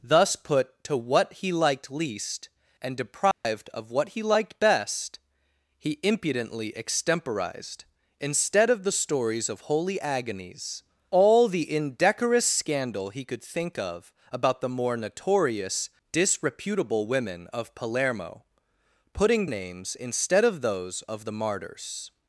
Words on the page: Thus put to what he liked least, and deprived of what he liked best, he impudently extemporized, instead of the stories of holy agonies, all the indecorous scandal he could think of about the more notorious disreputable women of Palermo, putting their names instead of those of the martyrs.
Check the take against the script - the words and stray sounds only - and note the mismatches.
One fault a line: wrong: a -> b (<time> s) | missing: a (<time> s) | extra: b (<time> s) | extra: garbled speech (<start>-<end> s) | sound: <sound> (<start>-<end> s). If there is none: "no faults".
sound: dropout (3.3-3.4 s)
missing: their (19.5 s)